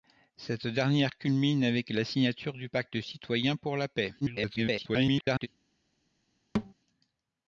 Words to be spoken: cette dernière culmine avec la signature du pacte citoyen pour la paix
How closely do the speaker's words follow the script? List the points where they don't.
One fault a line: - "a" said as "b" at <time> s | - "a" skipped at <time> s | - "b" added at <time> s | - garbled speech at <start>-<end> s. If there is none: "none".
- garbled speech at 4.2-5.5 s